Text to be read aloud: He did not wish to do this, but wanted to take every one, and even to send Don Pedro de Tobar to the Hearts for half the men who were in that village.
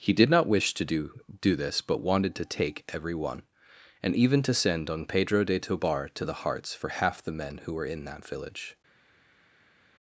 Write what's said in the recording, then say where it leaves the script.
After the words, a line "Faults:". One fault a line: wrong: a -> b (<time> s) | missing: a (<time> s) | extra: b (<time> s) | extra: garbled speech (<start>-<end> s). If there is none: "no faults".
He did not wish to do do this, but wanted to take every one, and even to send Don Pedro de Tobar to the Hearts for half the men who were in that village.
Faults:
extra: do (1.4 s)